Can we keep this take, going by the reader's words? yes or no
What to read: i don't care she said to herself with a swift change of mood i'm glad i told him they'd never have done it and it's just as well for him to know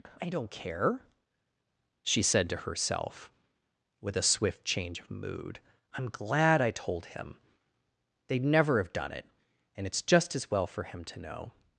yes